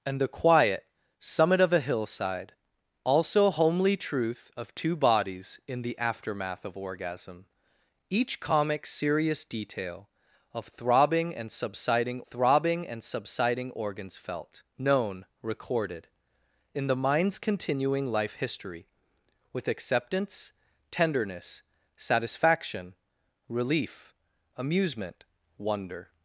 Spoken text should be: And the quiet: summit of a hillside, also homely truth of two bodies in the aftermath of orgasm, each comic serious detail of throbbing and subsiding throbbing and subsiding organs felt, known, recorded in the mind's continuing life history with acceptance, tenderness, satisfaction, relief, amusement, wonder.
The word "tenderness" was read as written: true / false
true